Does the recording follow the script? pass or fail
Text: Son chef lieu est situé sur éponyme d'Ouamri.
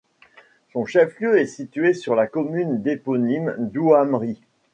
fail